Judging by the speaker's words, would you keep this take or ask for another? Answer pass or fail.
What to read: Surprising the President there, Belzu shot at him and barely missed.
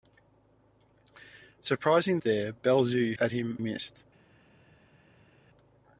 fail